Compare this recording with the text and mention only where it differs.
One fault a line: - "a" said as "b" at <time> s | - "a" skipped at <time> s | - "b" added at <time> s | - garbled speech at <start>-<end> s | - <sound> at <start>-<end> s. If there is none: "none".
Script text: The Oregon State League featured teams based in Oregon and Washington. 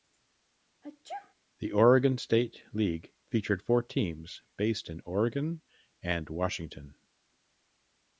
- sneeze at 0.8-1.3 s
- "four" added at 3.6 s